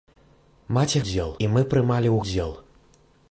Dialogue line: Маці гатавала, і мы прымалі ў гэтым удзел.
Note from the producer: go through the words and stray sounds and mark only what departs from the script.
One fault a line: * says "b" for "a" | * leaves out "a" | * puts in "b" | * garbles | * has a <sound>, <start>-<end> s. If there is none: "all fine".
* says "удзел" for "гатавала"
* leaves out "гэтым"